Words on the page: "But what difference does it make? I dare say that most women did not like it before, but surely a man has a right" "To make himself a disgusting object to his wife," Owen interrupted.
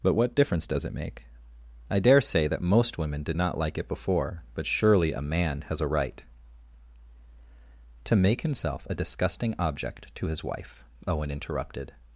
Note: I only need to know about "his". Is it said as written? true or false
true